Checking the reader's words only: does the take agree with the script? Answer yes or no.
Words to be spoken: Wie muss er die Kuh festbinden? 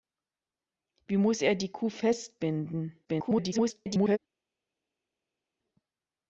no